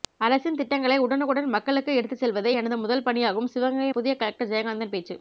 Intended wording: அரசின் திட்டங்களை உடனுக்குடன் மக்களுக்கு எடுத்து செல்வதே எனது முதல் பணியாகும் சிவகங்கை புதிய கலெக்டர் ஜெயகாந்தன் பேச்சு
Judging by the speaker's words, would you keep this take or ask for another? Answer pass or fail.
pass